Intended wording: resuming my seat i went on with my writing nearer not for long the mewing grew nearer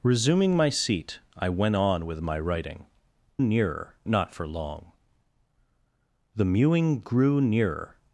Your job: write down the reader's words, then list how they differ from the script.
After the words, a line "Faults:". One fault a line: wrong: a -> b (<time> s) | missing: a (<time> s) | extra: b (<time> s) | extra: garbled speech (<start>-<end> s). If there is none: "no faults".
resuming my seat i went on with my writing nearer not for long the mewing grew nearer
Faults:
no faults